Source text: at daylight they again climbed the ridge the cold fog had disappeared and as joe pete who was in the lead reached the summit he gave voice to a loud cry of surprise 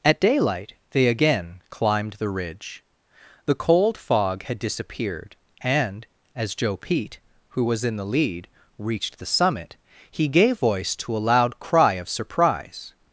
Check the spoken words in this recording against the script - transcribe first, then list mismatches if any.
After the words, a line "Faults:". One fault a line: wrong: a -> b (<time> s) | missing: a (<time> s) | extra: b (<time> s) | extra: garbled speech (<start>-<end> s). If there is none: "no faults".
at daylight they again climbed the ridge the cold fog had disappeared and as joe pete who was in the lead reached the summit he gave voice to a loud cry of surprise
Faults:
no faults